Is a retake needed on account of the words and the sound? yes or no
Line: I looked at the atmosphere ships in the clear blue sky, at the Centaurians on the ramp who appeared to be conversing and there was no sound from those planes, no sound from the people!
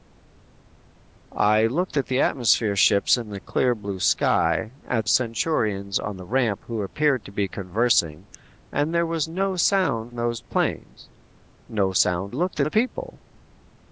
yes